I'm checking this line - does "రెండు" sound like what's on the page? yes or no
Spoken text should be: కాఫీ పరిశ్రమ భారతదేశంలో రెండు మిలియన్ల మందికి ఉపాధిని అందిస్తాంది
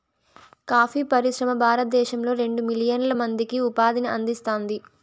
yes